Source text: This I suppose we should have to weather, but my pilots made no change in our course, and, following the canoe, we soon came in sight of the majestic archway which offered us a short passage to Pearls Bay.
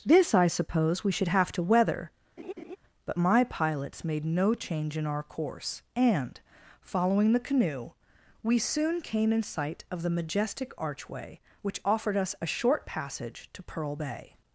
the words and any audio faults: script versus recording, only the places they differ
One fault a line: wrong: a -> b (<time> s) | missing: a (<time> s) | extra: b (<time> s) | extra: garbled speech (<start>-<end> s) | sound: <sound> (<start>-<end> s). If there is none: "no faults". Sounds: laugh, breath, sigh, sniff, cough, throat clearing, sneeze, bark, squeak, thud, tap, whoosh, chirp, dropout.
sound: laugh (2.4-2.8 s)
wrong: Pearls -> Pearl (13.6 s)